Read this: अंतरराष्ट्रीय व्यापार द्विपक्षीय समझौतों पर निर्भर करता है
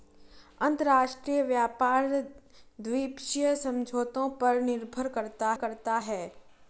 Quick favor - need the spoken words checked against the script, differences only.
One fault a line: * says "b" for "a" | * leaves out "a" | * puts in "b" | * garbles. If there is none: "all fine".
* puts in "करता"